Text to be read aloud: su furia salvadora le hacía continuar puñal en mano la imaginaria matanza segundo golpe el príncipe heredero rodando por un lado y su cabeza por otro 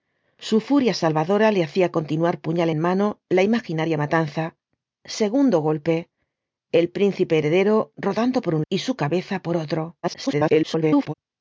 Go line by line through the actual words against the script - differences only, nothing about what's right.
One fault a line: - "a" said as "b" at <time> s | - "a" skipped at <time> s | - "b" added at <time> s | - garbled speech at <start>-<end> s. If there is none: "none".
- "lado" skipped at 8.6 s
- garbled speech at 10.0-11.1 s